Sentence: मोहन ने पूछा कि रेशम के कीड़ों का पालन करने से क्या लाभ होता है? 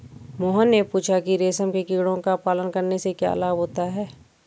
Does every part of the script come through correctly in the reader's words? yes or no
yes